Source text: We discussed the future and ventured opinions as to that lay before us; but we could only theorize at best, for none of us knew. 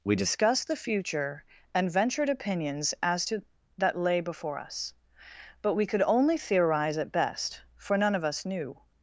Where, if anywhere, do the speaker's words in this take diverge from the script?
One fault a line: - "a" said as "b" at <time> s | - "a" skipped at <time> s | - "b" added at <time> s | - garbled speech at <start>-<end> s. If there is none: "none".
none